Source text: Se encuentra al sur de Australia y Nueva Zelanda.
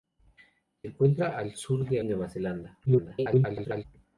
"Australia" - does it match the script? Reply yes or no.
no